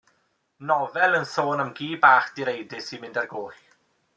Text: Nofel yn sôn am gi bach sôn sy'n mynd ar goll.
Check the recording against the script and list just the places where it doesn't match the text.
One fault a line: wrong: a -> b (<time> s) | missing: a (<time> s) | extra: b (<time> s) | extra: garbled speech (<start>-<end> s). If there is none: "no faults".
wrong: sôn -> direidus (2.4 s)